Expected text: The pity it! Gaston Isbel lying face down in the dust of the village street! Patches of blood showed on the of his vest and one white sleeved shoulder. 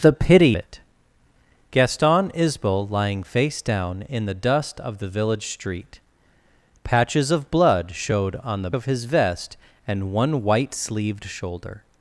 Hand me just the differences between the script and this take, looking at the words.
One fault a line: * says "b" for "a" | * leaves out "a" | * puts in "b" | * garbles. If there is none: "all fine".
all fine